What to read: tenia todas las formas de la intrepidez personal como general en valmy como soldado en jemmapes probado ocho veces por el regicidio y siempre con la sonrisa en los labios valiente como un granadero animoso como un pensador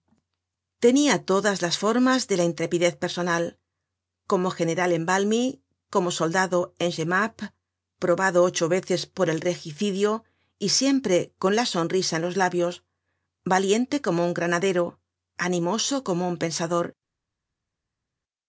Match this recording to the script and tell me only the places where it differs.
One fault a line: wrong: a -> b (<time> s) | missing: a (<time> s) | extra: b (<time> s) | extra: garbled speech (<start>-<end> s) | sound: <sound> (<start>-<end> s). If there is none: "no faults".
no faults